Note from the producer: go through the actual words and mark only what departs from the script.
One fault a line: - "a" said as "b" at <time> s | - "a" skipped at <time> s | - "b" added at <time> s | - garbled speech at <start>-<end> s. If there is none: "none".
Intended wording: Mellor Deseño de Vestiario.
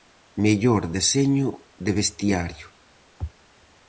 none